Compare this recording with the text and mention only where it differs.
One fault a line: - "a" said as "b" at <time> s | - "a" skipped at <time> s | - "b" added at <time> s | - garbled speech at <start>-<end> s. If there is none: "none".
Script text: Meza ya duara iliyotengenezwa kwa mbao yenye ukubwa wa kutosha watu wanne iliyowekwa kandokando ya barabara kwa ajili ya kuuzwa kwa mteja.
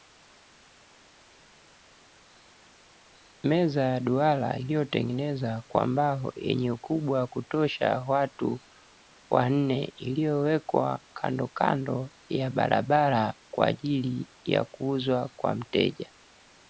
none